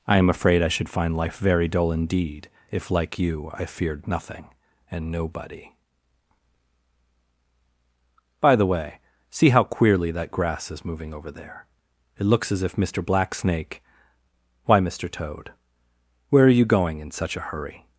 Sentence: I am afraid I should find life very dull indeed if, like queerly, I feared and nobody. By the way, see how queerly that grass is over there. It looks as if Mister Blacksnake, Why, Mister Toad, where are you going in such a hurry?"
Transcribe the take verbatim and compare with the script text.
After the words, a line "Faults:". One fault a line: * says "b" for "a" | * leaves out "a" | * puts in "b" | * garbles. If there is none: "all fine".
I am afraid I should find life very dull indeed if, like you, I feared nothing and nobody. By the way, see how queerly that grass is moving over there. It looks as if Mister Blacksnake, Why, Mister Toad, where are you going in such a hurry?"
Faults:
* says "you" for "queerly"
* puts in "nothing"
* puts in "moving"